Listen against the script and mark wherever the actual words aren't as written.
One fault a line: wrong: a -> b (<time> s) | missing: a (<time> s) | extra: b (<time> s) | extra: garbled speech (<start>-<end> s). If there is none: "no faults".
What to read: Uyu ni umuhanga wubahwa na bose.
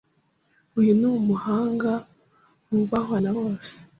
no faults